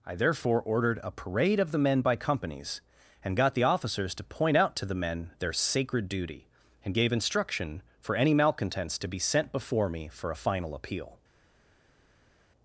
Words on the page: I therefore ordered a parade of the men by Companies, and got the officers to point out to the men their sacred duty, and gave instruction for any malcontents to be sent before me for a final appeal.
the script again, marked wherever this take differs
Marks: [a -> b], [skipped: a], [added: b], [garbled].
I therefore ordered a parade of the men by Companies, and got the officers to point out to the men their sacred duty, and gave instruction for any malcontents to be sent before me for a final appeal.